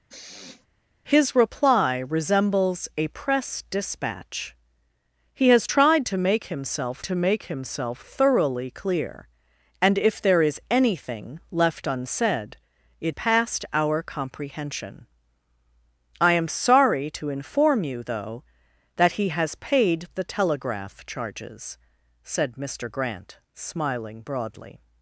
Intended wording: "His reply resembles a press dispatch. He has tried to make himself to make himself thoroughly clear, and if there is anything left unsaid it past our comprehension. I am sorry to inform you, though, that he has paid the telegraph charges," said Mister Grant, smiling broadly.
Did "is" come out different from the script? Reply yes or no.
no